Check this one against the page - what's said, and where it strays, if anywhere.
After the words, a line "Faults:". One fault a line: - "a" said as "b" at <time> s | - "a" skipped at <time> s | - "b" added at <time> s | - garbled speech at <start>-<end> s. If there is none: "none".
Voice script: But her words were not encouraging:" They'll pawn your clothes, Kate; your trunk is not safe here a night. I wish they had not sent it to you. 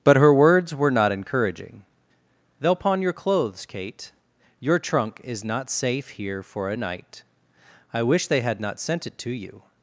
But her words were not encouraging:" They'll pawn your clothes, Kate; your trunk is not safe here for a night. I wish they had not sent it to you.
Faults:
- "for" added at 6.4 s